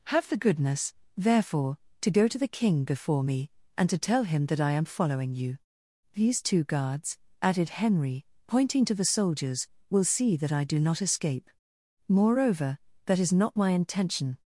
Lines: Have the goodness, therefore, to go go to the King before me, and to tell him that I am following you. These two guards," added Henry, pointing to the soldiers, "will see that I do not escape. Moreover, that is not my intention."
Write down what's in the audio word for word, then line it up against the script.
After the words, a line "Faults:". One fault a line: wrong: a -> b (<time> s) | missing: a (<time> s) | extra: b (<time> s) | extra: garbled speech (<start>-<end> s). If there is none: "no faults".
Have the goodness, therefore, to go to the King before me, and to tell him that I am following you. These two guards," added Henry, pointing to the soldiers, "will see that I do not escape. Moreover, that is not my intention."
Faults:
missing: go (2.3 s)